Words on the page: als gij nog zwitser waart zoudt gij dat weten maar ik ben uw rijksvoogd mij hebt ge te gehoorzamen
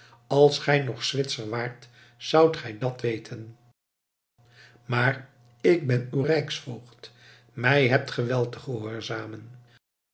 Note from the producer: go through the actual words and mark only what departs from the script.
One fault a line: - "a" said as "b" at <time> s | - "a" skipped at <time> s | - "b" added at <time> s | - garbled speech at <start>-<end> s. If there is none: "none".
- "wel" added at 8.2 s